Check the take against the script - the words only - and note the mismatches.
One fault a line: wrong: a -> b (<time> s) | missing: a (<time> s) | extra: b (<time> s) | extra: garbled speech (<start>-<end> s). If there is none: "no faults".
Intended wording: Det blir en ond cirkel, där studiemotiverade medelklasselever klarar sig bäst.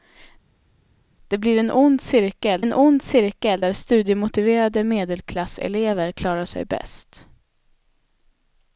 extra: en ond cirkel (2.6 s)